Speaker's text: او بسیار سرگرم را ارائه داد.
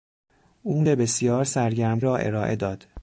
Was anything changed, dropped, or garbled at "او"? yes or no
no